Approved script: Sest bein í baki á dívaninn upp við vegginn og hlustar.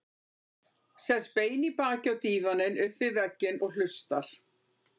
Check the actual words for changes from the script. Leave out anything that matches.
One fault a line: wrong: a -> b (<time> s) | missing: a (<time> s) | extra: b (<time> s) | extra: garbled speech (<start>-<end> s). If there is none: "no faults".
no faults